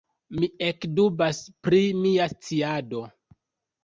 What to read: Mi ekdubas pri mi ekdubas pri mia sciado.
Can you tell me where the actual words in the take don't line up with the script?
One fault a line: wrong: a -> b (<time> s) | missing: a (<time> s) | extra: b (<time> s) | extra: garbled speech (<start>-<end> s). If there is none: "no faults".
missing: mi ekdubas pri (1.8 s)